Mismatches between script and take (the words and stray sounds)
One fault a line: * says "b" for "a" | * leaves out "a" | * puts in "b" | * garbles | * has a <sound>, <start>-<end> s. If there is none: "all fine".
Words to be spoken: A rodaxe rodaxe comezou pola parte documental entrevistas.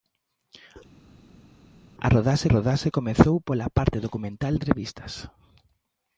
all fine